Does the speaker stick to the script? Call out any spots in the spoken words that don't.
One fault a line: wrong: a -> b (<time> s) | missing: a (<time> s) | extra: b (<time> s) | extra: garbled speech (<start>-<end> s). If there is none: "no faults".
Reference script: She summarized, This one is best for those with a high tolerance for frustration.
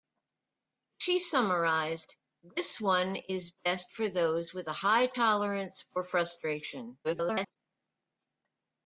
extra: garbled speech (7.0-7.6 s)